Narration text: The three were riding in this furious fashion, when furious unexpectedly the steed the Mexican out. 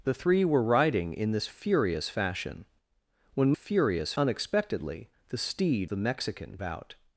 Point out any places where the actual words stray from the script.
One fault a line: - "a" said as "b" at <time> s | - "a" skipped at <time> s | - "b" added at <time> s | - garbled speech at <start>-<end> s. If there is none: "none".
none